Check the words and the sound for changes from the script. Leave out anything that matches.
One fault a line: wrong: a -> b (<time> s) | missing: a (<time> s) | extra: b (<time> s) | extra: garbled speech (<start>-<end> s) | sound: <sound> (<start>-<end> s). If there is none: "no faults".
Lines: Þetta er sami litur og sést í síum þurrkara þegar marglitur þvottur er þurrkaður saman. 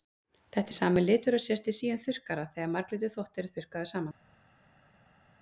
no faults